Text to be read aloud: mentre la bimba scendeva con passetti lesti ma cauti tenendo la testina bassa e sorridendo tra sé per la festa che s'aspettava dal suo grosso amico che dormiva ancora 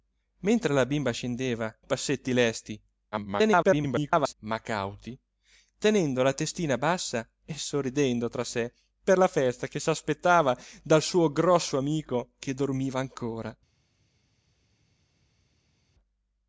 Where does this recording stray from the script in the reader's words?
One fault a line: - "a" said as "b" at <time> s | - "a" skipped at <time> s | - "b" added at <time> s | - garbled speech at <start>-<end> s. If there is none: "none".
- "con" skipped at 1.8 s
- garbled speech at 3.1-4.3 s